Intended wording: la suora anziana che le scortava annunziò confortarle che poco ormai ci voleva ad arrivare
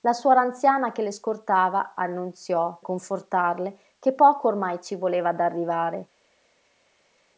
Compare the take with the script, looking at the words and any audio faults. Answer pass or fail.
pass